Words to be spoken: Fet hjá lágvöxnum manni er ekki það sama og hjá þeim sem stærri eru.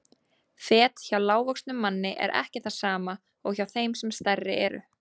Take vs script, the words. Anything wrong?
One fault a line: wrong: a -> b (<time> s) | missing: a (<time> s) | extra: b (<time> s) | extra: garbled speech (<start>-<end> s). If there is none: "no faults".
no faults